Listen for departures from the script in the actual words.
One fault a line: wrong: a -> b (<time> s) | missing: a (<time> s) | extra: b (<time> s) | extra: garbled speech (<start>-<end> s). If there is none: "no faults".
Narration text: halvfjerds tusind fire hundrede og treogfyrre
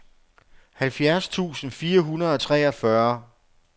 no faults